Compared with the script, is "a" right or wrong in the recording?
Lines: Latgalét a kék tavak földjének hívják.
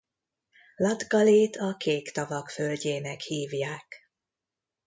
right